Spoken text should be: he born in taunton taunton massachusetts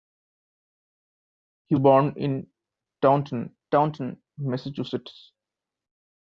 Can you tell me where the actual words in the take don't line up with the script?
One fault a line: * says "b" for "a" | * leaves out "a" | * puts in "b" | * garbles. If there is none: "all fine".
all fine